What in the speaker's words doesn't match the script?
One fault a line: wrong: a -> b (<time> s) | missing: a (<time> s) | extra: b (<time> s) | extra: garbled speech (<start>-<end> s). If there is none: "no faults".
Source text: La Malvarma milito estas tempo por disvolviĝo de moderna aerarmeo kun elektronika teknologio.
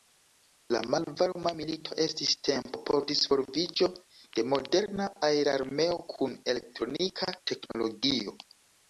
wrong: estas -> estis (2.0 s)